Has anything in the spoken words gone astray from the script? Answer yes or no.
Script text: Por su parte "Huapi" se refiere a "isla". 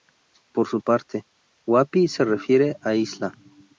no